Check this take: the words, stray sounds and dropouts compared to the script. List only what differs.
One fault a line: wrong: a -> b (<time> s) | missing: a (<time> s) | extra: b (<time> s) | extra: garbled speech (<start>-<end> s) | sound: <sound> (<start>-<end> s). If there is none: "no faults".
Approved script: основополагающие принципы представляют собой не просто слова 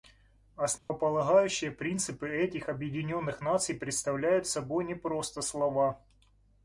sound: dropout (0.8-0.9 s)
extra: этих объединенных наций (2.3 s)